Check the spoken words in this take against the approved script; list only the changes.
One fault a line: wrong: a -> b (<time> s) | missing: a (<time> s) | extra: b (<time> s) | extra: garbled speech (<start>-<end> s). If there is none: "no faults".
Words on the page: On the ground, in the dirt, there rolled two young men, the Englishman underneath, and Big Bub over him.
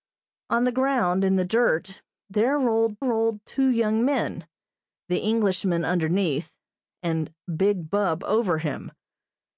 extra: rolled (3.0 s)